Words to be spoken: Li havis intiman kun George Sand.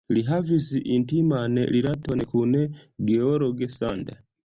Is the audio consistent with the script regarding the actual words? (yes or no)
no